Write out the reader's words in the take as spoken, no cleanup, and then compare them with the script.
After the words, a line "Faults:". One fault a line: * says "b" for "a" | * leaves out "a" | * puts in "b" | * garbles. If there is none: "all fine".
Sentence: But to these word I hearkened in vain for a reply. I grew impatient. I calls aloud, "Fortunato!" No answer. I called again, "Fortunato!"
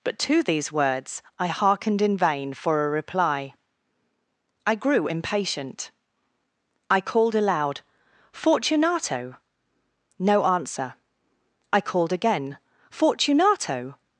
But to these words I hearkened in vain for a reply. I grew impatient. I called aloud, "Fortunato!" No answer. I called again, "Fortunato!"
Faults:
* says "words" for "word"
* says "called" for "calls"